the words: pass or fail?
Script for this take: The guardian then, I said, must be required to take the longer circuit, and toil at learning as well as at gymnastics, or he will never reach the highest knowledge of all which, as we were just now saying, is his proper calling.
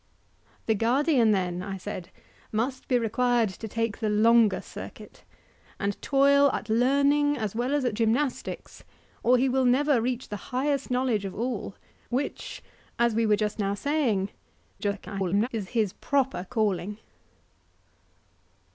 fail